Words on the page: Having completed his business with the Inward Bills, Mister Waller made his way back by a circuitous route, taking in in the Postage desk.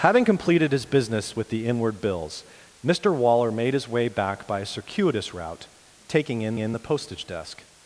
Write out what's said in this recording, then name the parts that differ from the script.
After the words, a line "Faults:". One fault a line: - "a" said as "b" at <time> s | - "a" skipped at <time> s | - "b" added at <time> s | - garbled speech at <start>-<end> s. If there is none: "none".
Having completed his business with the Inward Bills, Mister Waller made his way back by a circuitous route, taking in in the Postage desk.
Faults:
none